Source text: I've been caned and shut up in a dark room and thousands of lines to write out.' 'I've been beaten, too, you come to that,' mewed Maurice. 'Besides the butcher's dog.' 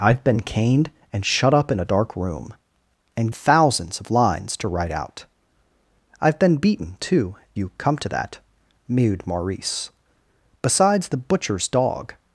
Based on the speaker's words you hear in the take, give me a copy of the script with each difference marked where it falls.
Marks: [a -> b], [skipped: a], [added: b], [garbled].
I've been caned and shut up in a dark room and thousands of lines to write out.' 'I've been beaten, too, you come to that,' mewed Maurice. 'Besides the butcher's dog.'